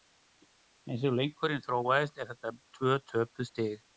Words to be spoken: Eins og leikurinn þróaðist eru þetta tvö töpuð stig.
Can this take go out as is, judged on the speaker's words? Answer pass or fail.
pass